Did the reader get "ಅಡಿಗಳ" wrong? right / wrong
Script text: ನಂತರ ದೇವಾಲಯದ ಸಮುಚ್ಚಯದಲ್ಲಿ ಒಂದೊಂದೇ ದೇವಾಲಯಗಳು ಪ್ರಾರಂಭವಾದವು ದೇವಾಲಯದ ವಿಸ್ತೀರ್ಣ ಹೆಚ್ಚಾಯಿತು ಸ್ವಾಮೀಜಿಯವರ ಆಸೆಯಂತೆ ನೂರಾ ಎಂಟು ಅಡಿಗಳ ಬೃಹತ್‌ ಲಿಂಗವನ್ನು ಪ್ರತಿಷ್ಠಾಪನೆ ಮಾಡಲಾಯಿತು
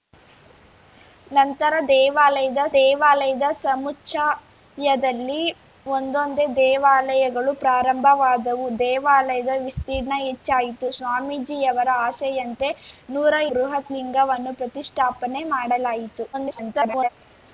wrong